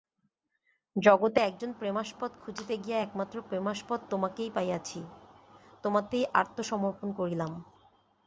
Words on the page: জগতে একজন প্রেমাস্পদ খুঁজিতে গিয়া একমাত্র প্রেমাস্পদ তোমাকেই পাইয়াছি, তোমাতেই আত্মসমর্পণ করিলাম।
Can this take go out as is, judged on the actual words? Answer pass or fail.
pass